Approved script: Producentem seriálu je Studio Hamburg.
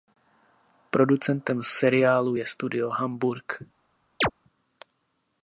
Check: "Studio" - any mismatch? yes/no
no